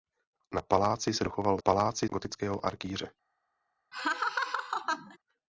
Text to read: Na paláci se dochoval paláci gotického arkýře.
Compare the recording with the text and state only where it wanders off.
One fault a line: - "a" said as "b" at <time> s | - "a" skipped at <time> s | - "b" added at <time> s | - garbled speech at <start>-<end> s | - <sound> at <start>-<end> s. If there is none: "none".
- laugh at 3.9-5.2 s